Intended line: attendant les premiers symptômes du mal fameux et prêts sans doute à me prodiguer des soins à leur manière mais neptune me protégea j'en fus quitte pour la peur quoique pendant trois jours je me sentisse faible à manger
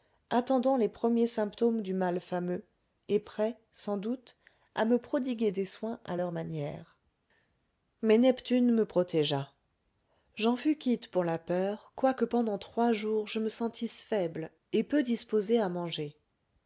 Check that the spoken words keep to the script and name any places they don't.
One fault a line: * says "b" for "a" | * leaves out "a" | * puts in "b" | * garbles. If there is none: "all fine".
* puts in "et peu disposé"